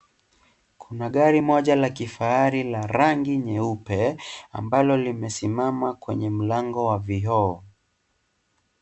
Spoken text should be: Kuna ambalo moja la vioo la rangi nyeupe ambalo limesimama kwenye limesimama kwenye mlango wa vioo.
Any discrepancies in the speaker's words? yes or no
yes